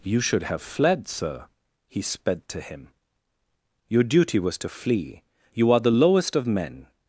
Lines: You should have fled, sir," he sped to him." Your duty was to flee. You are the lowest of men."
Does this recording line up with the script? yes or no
yes